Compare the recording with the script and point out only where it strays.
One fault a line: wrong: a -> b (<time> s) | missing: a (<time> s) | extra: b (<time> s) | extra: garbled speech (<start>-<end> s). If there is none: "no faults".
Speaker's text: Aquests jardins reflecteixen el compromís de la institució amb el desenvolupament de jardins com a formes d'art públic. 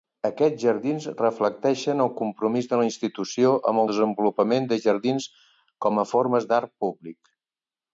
missing: el (3.9 s)